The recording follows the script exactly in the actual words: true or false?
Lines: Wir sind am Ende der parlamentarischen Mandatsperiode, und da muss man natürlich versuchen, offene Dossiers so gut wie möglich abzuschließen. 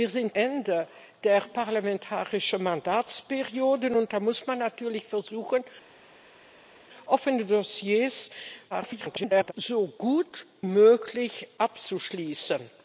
false